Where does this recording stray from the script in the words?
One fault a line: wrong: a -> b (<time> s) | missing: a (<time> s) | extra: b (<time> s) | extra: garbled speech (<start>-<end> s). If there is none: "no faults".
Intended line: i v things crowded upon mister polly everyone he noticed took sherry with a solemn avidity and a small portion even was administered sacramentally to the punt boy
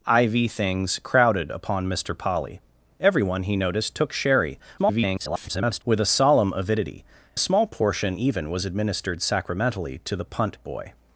extra: garbled speech (4.8-5.8 s)
missing: and (7.0 s)